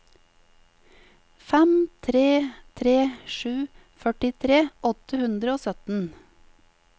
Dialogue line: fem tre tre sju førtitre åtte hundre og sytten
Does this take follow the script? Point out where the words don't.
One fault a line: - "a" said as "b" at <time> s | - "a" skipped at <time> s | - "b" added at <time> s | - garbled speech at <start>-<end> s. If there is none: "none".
none